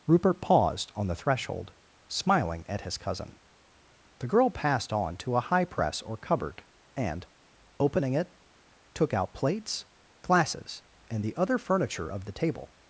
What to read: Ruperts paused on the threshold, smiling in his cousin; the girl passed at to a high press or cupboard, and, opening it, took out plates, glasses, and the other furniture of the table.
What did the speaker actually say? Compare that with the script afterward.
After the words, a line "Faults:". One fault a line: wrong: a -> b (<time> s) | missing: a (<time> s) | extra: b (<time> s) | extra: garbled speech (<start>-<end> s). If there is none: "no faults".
Rupert paused on the threshold, smiling at his cousin; the girl passed on to a high press or cupboard, and, opening it, took out plates, glasses, and the other furniture of the table.
Faults:
wrong: Ruperts -> Rupert (0.1 s)
wrong: in -> at (2.7 s)
wrong: at -> on (4.9 s)